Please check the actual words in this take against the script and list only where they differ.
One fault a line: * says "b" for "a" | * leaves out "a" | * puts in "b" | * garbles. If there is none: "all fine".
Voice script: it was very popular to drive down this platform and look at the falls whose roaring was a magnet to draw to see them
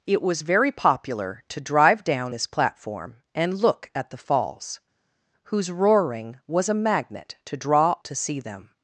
all fine